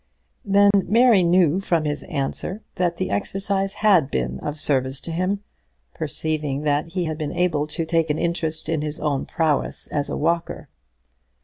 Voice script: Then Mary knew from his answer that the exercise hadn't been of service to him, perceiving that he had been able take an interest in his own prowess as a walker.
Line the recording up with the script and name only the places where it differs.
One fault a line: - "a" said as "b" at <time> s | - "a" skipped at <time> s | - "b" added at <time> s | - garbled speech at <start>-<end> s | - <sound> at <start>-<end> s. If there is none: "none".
- dropout at 0.7-0.7 s
- "hadn't" said as "had" at 3.9 s
- "to" added at 7.7 s